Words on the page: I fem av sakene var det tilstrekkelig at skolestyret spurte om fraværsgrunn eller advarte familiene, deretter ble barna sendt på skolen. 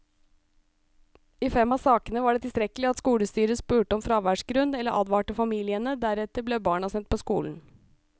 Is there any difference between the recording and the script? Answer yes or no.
no